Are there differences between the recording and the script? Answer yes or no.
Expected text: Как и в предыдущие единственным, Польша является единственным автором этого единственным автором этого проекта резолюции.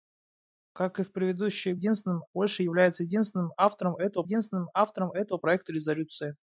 no